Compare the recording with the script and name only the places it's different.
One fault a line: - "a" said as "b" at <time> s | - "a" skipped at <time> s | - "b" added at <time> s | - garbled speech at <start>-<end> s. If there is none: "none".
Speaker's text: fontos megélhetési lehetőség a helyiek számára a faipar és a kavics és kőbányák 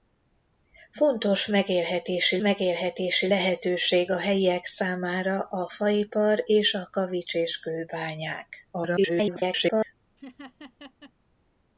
- "megélhetési" added at 2.4 s
- garbled speech at 8.7-9.9 s